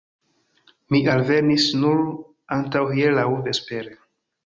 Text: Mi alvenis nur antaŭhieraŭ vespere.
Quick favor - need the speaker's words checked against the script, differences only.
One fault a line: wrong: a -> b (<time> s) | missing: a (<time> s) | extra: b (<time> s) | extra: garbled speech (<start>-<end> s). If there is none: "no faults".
no faults